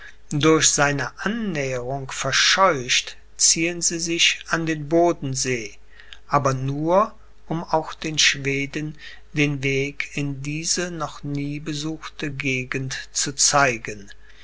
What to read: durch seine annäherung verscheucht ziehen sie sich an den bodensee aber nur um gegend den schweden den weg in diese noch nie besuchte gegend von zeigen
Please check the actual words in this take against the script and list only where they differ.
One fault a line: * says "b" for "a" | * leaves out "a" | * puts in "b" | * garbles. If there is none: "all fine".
* says "auch" for "gegend"
* says "zu" for "von"